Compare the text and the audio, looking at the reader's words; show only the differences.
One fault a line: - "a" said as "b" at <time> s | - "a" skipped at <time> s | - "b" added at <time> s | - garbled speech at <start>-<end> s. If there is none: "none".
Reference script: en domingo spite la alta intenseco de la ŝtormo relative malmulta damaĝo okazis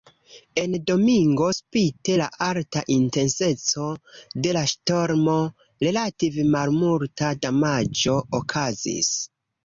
none